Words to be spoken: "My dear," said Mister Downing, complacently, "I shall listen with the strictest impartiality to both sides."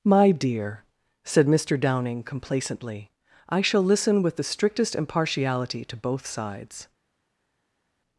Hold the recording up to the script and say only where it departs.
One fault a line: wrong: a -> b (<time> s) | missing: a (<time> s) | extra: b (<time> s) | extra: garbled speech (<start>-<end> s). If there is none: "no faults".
no faults